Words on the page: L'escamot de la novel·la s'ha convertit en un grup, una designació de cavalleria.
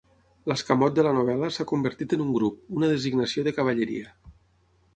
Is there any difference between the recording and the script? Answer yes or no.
no